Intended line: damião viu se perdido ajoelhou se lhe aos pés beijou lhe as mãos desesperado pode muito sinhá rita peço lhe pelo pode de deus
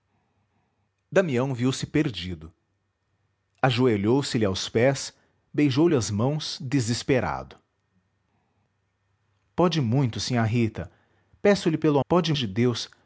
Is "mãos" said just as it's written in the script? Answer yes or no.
yes